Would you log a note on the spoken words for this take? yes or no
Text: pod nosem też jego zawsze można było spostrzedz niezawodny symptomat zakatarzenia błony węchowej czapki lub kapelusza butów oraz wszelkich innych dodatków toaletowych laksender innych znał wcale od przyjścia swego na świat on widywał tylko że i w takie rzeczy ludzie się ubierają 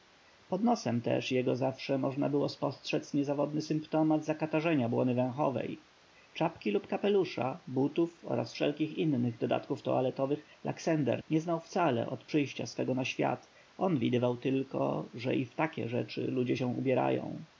yes